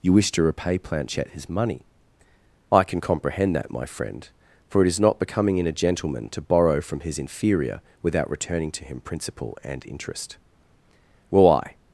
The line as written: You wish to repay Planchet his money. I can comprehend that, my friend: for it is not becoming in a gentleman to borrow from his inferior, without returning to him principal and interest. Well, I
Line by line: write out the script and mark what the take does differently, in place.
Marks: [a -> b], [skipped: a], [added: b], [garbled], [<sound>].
You wish to repay Planchet his money. I can comprehend that, my friend: for it is not becoming in a gentleman to borrow from his inferior, without returning to him principal and interest. Well, I